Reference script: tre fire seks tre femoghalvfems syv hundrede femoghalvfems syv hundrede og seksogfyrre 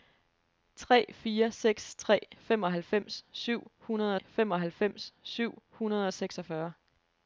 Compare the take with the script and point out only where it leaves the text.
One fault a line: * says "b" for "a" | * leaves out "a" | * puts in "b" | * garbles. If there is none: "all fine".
all fine